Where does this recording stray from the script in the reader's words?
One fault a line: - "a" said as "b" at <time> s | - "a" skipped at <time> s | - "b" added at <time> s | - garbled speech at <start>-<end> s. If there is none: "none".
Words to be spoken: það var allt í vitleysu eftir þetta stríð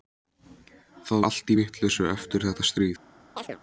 - "var" skipped at 1.2 s